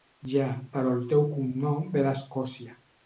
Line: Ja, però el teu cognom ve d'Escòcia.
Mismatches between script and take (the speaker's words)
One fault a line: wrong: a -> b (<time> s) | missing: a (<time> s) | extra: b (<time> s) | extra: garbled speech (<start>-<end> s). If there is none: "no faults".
no faults